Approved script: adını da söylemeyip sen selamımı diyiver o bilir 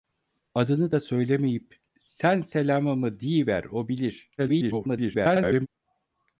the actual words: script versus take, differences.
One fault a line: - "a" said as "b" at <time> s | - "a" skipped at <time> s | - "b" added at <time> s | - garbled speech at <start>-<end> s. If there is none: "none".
- garbled speech at 4.4-5.7 s